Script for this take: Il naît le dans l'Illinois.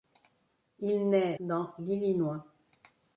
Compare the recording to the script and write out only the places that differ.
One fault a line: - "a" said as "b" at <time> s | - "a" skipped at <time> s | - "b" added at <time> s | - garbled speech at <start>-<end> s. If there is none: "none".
- "le" skipped at 1.4 s